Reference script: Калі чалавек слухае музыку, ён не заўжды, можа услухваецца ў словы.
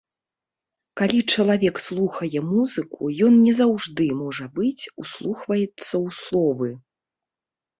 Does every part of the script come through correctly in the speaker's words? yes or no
no